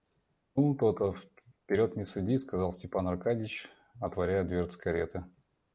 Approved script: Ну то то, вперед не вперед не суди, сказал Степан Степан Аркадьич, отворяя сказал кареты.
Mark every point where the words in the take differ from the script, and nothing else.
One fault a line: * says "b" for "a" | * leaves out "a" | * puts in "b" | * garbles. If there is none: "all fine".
* leaves out "вперед не"
* leaves out "Степан"
* says "дверцы" for "сказал"